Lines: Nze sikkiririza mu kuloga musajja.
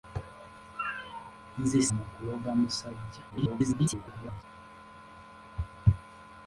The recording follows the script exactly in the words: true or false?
false